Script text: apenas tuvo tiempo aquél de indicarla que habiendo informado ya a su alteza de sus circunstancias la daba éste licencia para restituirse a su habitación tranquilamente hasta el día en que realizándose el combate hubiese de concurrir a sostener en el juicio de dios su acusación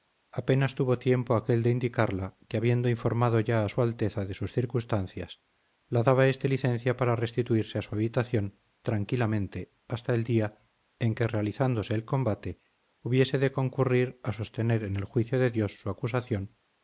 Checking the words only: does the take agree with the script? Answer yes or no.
yes